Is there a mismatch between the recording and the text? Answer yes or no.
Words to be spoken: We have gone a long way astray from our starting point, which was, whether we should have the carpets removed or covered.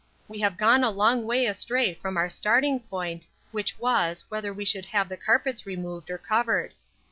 no